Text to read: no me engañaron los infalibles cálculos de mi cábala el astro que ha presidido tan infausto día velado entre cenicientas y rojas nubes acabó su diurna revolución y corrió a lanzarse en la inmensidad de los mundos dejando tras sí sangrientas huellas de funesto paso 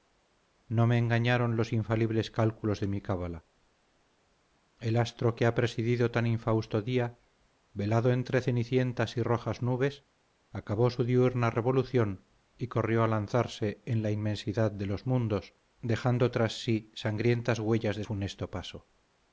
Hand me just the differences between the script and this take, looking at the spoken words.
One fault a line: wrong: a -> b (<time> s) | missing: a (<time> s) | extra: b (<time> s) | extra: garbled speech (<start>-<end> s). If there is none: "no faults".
no faults